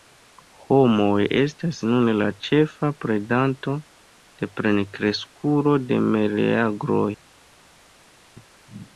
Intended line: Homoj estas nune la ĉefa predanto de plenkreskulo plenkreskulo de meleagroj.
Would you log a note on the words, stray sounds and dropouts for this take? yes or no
yes